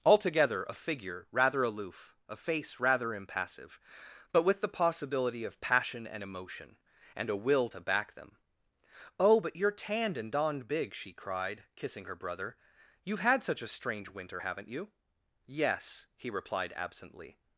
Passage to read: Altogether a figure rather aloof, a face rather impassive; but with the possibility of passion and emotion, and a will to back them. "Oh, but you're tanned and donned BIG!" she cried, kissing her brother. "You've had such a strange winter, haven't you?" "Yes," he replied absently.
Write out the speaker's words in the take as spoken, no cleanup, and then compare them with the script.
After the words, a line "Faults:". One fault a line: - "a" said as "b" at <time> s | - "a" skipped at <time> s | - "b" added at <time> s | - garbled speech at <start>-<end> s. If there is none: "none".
Altogether a figure rather aloof, a face rather impassive; but with the possibility of passion and emotion, and a will to back them. "Oh, but you're tanned and donned BIG!" she cried, kissing her brother. "You've had such a strange winter, haven't you?" "Yes," he replied absently.
Faults:
none